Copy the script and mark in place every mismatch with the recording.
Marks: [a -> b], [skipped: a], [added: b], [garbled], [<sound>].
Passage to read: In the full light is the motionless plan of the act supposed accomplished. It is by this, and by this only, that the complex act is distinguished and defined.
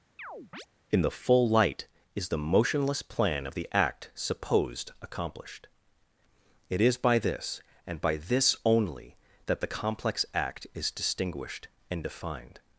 [chirp] In the full light is the motionless plan of the act supposed accomplished. It is by this, and by this only, that the complex act is distinguished and defined.